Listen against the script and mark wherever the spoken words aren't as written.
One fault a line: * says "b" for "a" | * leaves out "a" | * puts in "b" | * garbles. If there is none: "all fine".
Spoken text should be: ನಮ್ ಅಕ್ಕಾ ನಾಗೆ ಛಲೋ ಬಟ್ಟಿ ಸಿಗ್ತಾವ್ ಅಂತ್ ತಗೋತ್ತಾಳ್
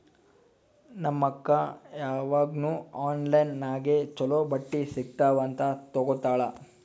* puts in "ಯಾವಾಗ್ನೂ ಆನ್ಲೈನ್"